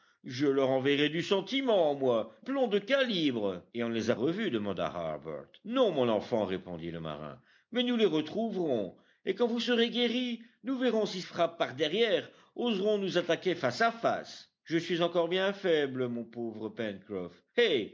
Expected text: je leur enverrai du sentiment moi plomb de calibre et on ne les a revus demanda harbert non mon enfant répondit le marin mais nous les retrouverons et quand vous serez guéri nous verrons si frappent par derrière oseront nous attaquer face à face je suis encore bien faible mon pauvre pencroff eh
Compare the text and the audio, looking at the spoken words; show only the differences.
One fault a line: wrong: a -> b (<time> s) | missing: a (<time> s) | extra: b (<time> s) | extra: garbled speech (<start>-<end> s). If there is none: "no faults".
no faults